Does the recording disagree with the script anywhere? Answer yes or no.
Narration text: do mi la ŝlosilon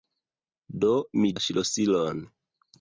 no